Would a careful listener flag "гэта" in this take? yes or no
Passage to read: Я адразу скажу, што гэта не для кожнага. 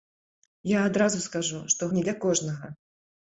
yes